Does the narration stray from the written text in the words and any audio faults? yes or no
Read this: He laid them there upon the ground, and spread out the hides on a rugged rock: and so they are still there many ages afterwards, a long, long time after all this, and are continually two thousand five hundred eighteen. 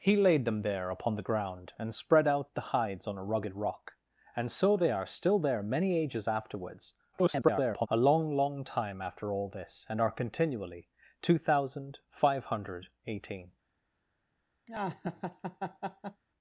yes